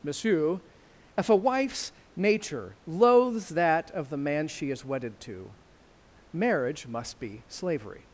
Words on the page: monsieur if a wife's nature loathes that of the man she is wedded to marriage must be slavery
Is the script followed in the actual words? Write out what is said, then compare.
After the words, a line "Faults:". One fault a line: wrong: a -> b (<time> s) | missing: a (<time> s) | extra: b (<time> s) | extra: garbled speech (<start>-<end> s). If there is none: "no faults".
monsieur if a wife's nature loathes that of the man she is wedded to marriage must be slavery
Faults:
no faults